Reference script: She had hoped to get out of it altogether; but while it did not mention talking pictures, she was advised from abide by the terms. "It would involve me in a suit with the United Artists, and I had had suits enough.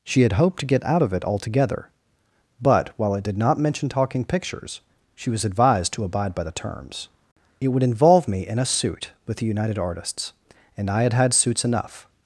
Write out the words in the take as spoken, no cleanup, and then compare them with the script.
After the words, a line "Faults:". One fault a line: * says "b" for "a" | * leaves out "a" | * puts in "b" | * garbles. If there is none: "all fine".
She had hoped to get out of it altogether; but while it did not mention talking pictures, she was advised to abide by the terms. "It would involve me in a suit with the United Artists, and I had had suits enough.
Faults:
* says "to" for "from"